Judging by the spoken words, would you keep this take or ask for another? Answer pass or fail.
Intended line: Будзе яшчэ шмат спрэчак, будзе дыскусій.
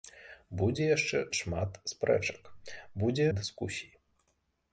pass